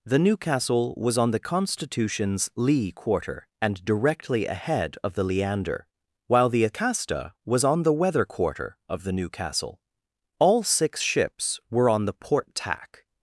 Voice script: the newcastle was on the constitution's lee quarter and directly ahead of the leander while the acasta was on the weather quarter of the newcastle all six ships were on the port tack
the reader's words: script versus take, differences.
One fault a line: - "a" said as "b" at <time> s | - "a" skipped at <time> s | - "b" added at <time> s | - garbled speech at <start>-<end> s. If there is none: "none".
none